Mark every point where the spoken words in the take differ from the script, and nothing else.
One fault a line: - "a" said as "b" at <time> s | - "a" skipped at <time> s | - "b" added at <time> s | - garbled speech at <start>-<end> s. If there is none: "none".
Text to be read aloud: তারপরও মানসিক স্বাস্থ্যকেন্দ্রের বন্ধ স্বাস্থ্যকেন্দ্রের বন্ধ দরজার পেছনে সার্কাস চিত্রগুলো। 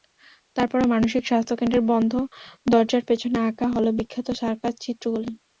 - "স্বাস্থ্যকেন্দ্রের বন্ধ দরজার পেছনে" said as "দরজার পেছনে আঁকা হলো বিখ্যাত" at 2.6 s